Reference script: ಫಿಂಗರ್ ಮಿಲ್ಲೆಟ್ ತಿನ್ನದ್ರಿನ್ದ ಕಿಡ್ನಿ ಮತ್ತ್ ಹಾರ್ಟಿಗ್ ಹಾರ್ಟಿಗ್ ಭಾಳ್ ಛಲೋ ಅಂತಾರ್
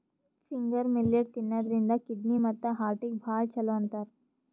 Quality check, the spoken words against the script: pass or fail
fail